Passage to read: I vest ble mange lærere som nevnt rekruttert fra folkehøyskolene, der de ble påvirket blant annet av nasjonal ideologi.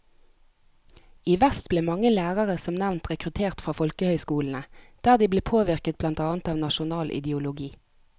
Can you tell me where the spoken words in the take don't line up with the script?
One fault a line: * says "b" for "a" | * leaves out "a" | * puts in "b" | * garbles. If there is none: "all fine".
all fine